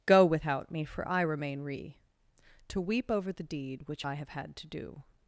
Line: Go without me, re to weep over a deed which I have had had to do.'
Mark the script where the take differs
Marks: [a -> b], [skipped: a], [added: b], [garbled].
Go without me, [added: for I remain] re to weep over [a -> the] deed which I have had [skipped: had] to do.'